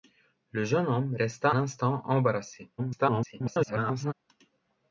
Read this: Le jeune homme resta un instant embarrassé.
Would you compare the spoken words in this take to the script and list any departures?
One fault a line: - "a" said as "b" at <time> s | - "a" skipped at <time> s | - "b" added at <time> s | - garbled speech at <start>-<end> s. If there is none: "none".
- "un" skipped at 1.5 s
- garbled speech at 2.8-4.1 s